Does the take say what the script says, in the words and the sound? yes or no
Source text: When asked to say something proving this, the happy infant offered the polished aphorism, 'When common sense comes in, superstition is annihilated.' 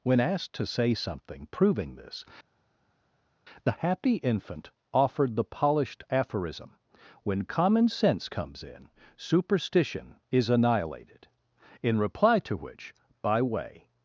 no